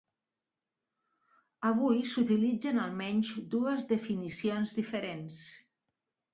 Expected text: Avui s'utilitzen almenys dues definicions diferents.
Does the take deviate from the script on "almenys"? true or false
false